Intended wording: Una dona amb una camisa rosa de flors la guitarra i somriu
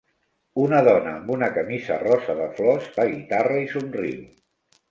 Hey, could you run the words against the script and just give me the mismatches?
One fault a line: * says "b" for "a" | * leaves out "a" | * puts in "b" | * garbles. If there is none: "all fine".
all fine